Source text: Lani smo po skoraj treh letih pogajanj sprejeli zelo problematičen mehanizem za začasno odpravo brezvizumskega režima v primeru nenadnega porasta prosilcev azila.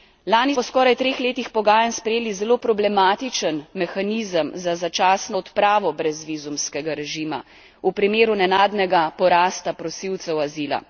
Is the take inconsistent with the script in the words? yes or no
yes